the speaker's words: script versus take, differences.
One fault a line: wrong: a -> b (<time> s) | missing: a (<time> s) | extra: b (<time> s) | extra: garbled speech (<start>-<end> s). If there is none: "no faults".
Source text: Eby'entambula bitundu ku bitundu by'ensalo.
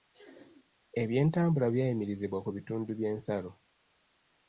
wrong: bitundu -> byayimirizibwa (1.7 s)